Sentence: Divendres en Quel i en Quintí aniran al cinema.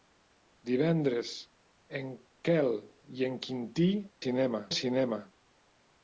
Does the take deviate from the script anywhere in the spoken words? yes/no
yes